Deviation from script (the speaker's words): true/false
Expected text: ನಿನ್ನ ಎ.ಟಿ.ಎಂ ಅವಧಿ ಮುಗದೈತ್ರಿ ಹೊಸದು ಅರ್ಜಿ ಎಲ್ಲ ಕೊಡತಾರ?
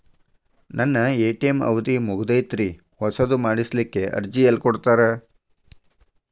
true